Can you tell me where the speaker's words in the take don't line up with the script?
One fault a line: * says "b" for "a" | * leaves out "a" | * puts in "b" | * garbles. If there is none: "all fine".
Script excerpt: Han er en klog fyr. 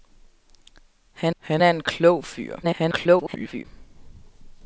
* puts in "han"
* garbles